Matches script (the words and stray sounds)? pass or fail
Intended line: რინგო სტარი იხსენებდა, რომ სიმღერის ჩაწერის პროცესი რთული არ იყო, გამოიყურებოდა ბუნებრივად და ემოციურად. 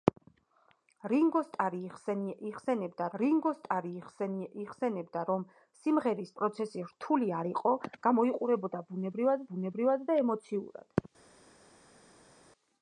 fail